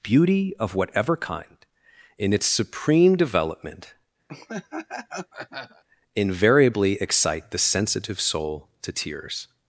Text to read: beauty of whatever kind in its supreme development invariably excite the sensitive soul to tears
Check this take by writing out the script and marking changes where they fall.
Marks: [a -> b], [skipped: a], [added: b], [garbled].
beauty of whatever kind in its supreme development invariably excite the sensitive soul to tears